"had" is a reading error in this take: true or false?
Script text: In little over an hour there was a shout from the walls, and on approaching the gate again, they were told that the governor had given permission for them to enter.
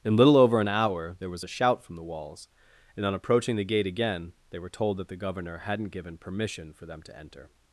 true